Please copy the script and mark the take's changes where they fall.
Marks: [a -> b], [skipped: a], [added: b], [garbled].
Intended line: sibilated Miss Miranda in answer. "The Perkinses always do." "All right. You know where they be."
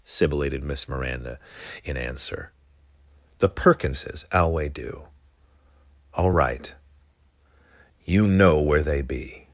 sibilated Miss Miranda in answer. "The Perkinses [always -> alway] do." "All right. You know where they be."